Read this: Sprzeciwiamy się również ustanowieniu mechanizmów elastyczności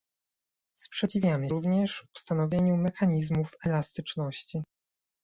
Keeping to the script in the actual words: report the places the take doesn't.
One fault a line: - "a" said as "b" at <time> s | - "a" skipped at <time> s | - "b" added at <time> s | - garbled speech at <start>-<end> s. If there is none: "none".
- "się" skipped at 1.5 s